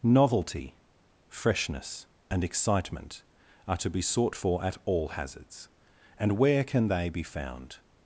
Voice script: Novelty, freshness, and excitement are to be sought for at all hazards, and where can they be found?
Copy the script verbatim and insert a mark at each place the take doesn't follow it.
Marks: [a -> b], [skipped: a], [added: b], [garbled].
Novelty, freshness, and excitement are to be sought for at all hazards, and where can they be found?